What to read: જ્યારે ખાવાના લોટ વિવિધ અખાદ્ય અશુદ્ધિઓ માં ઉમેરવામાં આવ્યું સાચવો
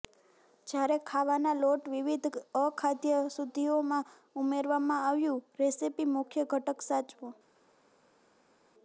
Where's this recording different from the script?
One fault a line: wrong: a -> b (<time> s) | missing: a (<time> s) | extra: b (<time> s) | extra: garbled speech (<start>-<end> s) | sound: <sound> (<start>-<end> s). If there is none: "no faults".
extra: રેસીપી મુખ્ય ઘટક (5.6 s)